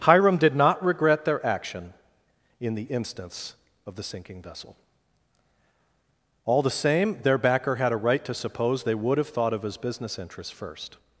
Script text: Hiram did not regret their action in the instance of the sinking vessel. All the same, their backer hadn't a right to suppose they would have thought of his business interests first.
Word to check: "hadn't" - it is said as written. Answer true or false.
false